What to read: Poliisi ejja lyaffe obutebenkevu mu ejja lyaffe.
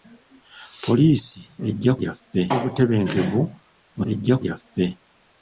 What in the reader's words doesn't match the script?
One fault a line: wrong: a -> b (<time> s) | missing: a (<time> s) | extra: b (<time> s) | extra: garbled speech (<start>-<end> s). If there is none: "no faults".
no faults